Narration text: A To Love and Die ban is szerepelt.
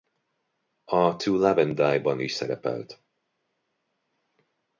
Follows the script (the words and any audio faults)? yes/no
yes